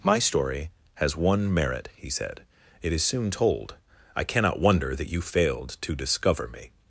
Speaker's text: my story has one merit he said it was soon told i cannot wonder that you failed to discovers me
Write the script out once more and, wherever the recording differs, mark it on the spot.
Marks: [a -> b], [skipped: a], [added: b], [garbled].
my story has one merit he said it [was -> is] soon told i cannot wonder that you failed to [discovers -> discover] me